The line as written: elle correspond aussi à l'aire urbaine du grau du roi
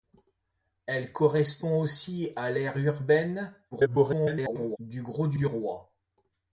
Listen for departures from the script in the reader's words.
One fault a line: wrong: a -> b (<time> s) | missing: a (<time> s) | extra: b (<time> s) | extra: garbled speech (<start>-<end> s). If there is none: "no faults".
extra: garbled speech (3.7-4.8 s)
extra: du (5.3 s)